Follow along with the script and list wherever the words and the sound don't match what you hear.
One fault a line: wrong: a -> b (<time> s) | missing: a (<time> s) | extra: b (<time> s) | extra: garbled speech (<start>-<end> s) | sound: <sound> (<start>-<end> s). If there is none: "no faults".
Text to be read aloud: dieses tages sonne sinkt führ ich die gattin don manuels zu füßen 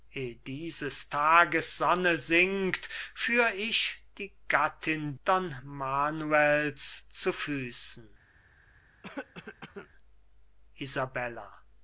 sound: cough (9.0-9.9 s)